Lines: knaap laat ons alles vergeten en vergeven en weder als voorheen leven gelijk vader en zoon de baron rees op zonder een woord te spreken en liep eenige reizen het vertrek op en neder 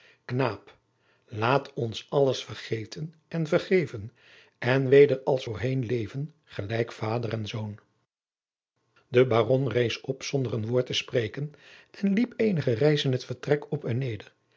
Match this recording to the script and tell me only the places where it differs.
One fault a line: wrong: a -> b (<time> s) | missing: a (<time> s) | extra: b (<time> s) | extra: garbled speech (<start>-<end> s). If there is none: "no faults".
no faults